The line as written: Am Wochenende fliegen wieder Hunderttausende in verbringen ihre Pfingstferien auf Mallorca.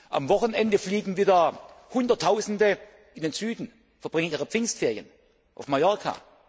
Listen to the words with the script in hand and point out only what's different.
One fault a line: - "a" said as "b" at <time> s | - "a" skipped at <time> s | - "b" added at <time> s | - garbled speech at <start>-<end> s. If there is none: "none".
- "den Süden" added at 3.2 s